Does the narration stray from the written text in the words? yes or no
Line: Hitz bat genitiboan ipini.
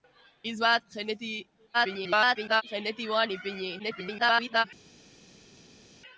yes